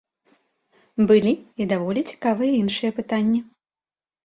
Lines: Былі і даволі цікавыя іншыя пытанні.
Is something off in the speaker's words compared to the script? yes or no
no